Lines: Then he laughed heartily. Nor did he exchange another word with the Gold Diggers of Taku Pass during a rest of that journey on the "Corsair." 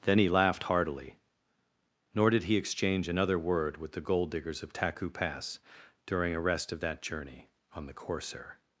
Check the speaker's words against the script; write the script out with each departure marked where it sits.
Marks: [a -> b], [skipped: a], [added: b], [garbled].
Then he laughed heartily. Nor did he exchange another word with the Gold Diggers of Taku Pass during a rest of that journey on the "Corsair."